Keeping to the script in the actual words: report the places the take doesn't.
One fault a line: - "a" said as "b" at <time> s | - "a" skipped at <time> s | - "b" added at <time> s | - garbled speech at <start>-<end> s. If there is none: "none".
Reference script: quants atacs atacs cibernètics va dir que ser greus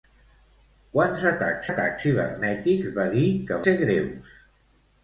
none